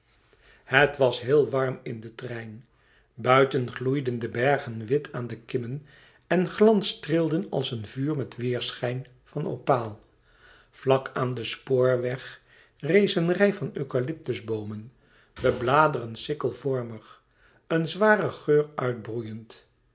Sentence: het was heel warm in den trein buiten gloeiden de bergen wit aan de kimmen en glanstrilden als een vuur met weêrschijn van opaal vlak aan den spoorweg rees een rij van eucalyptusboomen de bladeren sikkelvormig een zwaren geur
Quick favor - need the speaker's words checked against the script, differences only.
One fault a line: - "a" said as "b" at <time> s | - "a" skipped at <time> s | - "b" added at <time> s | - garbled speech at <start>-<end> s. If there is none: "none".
none